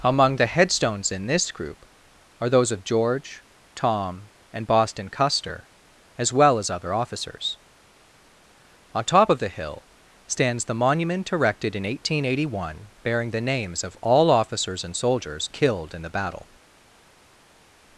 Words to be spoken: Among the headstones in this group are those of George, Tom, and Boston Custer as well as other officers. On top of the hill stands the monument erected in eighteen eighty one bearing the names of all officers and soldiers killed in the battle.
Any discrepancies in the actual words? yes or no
no